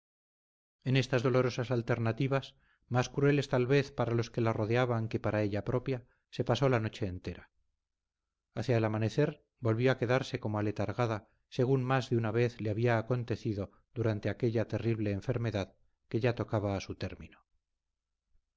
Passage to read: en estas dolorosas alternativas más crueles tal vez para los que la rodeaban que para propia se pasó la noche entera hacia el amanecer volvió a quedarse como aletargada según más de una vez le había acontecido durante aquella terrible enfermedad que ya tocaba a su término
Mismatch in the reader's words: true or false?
true